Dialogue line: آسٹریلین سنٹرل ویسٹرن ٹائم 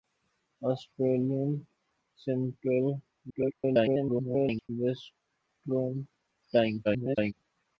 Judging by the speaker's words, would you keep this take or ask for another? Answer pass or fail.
fail